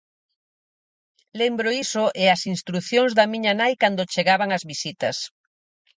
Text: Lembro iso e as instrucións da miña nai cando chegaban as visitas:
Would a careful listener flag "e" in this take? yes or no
no